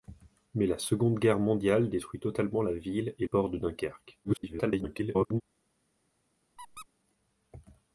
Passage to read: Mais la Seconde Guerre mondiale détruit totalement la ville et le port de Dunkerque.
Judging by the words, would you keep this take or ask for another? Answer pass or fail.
fail